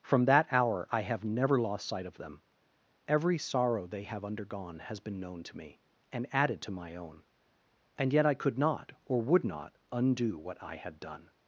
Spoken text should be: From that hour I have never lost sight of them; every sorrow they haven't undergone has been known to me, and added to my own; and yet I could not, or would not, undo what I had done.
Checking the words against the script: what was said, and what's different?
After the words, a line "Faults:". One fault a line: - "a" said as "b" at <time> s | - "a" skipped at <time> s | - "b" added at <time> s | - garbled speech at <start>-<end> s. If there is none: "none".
From that hour I have never lost sight of them; every sorrow they have undergone has been known to me, and added to my own; and yet I could not, or would not, undo what I had done.
Faults:
- "haven't" said as "have" at 4.0 s